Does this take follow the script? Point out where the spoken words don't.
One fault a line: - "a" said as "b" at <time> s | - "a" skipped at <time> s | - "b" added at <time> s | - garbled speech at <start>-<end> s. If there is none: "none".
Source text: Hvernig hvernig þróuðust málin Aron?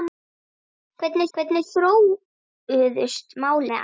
none